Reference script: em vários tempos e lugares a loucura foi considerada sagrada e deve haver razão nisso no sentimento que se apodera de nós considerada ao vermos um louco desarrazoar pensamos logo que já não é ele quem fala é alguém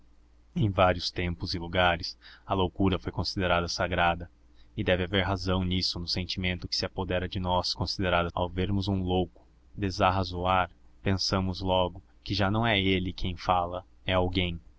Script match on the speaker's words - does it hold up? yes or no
yes